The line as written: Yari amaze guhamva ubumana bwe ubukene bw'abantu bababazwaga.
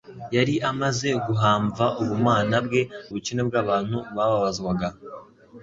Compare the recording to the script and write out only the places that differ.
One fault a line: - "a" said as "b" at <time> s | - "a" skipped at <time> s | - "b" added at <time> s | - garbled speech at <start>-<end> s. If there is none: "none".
none